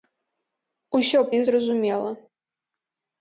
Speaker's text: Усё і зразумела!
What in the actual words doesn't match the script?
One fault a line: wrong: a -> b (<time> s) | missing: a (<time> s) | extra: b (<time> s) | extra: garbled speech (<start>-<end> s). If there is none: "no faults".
no faults